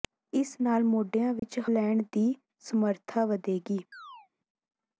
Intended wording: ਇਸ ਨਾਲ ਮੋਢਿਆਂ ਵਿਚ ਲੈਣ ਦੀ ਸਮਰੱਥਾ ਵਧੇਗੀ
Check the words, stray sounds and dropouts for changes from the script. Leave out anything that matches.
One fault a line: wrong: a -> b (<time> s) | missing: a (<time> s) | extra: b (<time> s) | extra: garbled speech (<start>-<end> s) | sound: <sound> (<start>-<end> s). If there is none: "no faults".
sound: dropout (1.4-1.4 s)
sound: chirp (3.9-4.3 s)